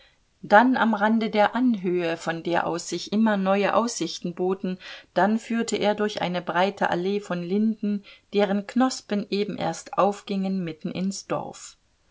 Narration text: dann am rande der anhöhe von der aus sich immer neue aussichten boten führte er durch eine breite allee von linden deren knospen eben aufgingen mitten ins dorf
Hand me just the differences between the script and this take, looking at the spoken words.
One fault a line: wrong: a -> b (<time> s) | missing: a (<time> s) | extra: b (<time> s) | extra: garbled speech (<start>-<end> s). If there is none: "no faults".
extra: dann (5.1 s)
extra: erst (9.6 s)